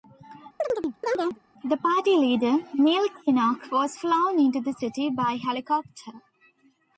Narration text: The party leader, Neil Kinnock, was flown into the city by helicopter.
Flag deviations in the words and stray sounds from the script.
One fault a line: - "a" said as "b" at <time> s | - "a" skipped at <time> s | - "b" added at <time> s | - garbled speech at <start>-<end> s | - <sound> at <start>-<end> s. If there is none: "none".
- chirp at 0.6-1.4 s